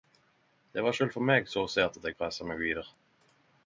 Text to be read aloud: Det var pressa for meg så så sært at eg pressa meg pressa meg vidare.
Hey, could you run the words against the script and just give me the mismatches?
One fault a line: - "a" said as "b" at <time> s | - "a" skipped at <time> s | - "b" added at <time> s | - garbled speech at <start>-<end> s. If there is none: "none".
- "pressa" said as "sjølv" at 1.0 s
- "så" skipped at 1.7 s
- "pressa meg" skipped at 2.6 s